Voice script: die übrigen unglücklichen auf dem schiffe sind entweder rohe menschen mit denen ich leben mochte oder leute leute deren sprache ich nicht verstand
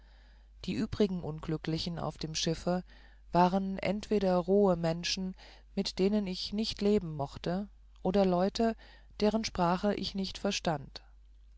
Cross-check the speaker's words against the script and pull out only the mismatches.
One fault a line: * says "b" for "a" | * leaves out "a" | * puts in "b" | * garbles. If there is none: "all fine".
* says "waren" for "sind"
* puts in "nicht"
* leaves out "leute"